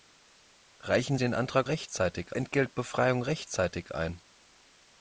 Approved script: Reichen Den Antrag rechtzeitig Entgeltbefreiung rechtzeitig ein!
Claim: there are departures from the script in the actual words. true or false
false